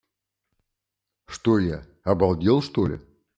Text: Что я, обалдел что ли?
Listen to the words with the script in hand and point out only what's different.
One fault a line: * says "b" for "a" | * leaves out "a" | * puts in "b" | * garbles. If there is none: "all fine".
all fine